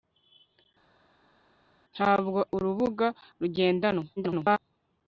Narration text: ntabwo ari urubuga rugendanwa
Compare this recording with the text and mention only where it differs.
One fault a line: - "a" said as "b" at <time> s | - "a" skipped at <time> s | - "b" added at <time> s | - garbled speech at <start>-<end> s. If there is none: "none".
- "ari" skipped at 2.4 s
- garbled speech at 4.2-4.6 s